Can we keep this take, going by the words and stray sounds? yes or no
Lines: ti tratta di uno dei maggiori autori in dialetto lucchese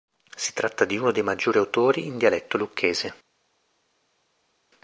no